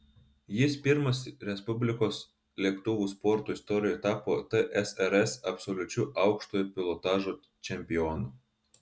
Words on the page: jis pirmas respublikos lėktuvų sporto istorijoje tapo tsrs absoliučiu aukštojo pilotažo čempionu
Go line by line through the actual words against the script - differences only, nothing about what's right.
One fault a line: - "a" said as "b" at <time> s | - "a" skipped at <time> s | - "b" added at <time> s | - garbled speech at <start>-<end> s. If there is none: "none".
none